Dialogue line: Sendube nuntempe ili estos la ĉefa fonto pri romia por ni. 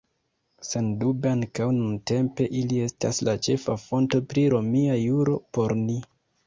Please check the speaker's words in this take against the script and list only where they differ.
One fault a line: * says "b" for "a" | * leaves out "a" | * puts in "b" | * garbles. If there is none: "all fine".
* puts in "ankaŭ"
* says "estas" for "estos"
* puts in "juro"